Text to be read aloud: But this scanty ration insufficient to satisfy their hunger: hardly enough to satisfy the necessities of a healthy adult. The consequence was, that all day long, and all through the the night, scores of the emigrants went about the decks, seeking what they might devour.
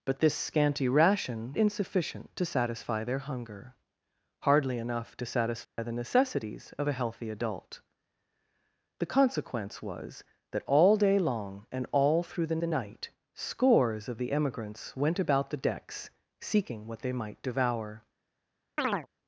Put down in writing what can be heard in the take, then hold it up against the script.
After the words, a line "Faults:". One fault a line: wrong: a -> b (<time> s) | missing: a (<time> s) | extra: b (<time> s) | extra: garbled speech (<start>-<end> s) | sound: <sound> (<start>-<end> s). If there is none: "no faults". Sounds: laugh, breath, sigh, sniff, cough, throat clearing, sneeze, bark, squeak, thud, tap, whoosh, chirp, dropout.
But this scanty ration insufficient to satisfy their hunger: hardly enough to satisfy the necessities of a healthy adult. The consequence was, that all day long, and all through the the night, scores of the emigrants went about the decks, seeking what they might devour.
Faults:
sound: dropout (5.6-5.8 s)
sound: chirp (18.8-19.1 s)